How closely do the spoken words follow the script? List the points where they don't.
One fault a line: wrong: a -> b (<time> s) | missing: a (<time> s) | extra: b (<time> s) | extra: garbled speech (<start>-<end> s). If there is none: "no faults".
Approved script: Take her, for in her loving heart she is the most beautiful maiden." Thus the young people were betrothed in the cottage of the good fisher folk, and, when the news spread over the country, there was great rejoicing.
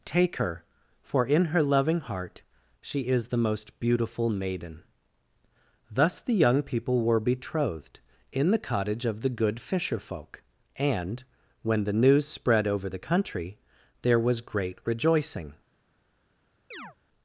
no faults